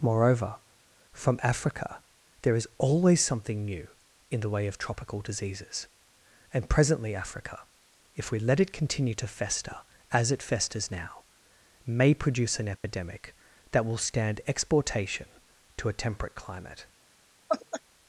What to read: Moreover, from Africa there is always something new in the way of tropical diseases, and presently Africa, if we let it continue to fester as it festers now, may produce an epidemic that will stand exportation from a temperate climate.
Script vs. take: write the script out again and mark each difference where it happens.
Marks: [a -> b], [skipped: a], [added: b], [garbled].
Moreover, from Africa there is always something new in the way of tropical diseases, and presently Africa, if we let it continue to fester as it festers now, may produce an epidemic that will stand exportation [from -> to] a temperate climate.